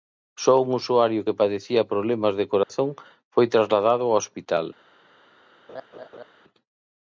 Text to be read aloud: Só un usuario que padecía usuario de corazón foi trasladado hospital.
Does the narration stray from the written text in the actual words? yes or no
yes